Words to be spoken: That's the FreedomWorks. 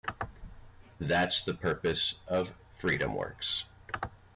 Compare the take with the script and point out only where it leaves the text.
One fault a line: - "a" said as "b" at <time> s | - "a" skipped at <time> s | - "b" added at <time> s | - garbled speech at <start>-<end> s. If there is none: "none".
- "purpose of" added at 1.5 s